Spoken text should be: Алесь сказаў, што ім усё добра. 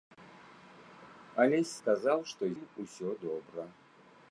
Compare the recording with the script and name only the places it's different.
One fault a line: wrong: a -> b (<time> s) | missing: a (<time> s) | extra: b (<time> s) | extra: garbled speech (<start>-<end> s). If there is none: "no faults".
no faults